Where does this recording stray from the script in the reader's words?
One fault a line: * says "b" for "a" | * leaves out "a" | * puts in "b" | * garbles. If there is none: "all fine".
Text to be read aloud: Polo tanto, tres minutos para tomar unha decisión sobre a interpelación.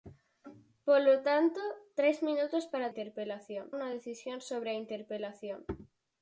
* says "interpelación" for "tomar"